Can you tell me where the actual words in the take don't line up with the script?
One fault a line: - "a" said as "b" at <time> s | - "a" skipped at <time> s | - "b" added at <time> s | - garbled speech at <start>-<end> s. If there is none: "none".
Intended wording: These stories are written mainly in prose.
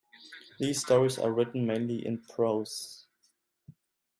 none